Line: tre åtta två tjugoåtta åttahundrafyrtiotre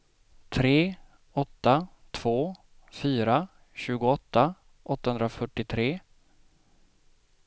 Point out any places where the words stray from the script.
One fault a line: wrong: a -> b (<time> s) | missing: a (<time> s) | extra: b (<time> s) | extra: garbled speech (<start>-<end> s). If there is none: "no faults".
extra: fyra (2.9 s)